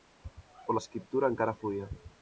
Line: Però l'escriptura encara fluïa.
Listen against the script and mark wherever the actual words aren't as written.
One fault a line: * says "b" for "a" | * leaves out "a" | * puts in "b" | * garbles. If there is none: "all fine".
all fine